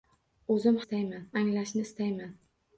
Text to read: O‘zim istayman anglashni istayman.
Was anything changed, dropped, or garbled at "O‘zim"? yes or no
no